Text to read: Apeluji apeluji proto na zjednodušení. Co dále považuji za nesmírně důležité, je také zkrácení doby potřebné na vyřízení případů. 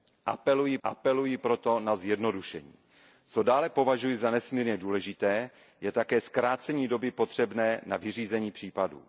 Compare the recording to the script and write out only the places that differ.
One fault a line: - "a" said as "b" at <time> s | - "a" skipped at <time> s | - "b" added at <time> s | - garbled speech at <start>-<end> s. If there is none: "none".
none